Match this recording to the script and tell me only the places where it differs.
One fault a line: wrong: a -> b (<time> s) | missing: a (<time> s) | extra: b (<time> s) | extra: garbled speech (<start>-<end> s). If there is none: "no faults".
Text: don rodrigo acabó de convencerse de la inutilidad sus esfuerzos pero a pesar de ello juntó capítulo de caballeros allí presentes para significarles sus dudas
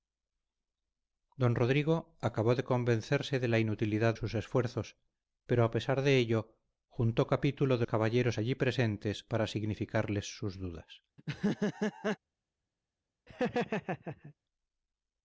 no faults